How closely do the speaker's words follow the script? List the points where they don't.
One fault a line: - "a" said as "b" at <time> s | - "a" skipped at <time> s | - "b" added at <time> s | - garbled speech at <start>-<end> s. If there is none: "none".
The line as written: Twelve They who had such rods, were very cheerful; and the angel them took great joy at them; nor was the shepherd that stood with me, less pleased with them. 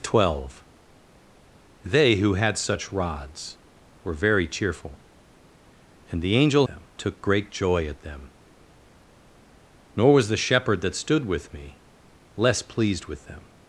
none